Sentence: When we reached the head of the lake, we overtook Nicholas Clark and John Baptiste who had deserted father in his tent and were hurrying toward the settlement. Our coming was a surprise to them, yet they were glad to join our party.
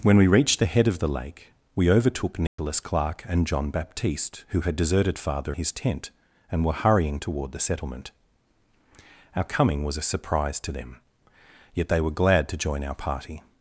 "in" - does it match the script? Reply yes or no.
no